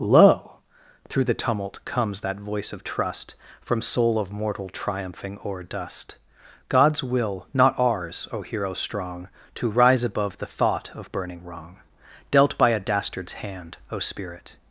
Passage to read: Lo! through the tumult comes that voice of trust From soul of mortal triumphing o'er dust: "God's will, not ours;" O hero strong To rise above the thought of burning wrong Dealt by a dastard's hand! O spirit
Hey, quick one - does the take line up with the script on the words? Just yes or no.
yes